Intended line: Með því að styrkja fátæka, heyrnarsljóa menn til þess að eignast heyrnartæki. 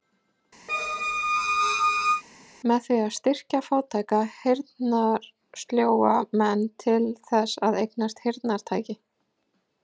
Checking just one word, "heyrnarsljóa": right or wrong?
right